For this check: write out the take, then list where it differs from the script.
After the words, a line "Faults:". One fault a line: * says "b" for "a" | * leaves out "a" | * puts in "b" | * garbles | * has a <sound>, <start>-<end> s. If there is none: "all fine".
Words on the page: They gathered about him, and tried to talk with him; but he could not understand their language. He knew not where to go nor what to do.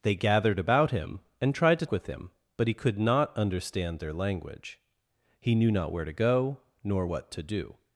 They gathered about him, and tried to with him; but he could not understand their language. He knew not where to go nor what to do.
Faults:
* leaves out "talk"